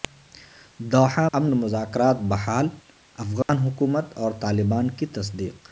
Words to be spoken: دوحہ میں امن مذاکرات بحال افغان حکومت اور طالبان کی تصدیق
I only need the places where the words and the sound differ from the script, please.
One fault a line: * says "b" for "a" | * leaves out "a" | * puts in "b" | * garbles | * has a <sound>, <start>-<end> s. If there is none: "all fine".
* leaves out "میں"
* has a dropout, 3.4-3.5 s